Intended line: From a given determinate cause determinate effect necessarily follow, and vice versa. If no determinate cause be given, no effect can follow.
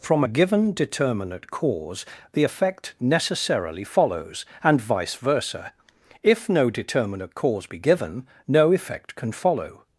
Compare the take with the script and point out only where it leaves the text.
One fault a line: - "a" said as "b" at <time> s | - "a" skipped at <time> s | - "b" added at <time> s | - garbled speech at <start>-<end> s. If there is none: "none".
- "determinate" said as "the" at 2.3 s
- "follow" said as "follows" at 3.8 s